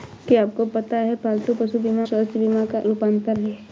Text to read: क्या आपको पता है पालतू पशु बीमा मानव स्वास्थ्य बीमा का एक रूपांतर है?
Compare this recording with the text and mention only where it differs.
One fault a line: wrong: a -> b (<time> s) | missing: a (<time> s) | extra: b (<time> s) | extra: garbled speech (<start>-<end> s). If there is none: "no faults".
missing: मानव (2.0 s)
missing: एक (2.8 s)